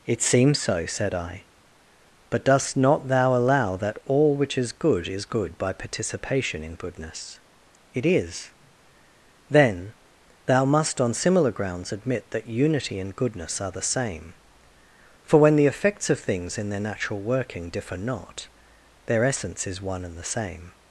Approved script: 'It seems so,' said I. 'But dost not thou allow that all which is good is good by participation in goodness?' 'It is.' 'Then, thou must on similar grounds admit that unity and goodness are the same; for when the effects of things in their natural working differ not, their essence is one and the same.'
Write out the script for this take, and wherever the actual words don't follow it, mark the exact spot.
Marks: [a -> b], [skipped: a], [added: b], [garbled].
'It seems so,' said I. 'But dost not thou allow that all which is good is good by participation in goodness?' 'It is.' 'Then, thou must on similar grounds admit that unity and goodness are the same; for when the effects of things in their natural working differ not, their essence is one and the same.'